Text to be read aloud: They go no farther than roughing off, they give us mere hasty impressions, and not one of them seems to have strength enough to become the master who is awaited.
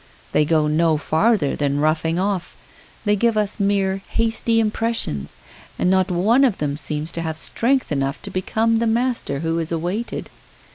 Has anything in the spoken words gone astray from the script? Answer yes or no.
no